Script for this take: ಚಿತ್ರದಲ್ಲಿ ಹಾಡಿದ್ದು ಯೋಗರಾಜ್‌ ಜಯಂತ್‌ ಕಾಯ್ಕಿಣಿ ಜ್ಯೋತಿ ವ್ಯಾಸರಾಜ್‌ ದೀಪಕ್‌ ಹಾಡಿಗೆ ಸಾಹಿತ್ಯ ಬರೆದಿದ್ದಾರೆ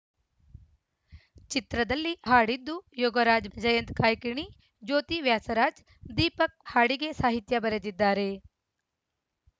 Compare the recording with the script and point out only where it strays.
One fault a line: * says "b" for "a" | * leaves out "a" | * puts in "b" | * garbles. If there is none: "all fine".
all fine